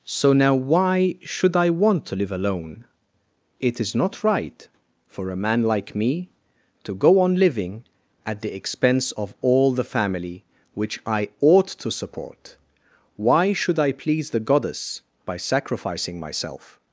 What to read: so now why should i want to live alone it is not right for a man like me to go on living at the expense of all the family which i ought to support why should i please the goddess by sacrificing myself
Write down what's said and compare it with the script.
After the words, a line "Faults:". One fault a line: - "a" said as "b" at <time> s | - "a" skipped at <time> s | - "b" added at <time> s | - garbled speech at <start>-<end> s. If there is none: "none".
so now why should i want to live alone it is not right for a man like me to go on living at the expense of all the family which i ought to support why should i please the goddess by sacrificing myself
Faults:
none